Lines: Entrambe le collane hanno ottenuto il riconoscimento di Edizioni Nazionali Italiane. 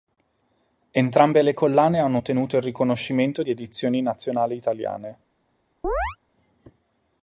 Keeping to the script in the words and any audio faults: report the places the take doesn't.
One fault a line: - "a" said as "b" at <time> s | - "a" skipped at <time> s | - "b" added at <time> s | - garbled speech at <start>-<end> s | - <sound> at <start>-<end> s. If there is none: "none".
- chirp at 5.8-6.2 s